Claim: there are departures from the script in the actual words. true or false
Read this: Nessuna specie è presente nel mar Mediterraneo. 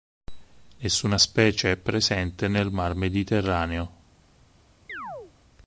false